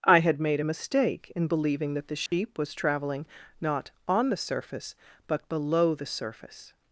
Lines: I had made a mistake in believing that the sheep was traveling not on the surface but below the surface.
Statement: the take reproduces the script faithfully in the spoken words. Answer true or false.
true